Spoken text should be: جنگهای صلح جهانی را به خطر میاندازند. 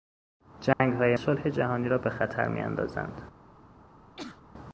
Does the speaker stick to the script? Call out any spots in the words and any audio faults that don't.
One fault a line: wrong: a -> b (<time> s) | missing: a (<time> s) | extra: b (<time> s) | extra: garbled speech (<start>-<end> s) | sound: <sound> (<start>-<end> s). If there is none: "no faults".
sound: dropout (0.7-0.8 s)
sound: sneeze (4.2-4.4 s)